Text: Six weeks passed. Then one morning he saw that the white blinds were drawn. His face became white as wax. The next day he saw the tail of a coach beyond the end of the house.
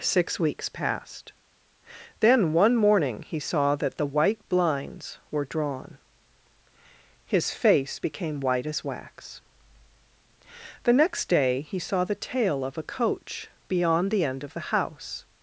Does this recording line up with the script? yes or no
yes